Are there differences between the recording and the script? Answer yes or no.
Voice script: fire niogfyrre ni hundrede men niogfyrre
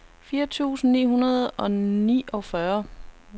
yes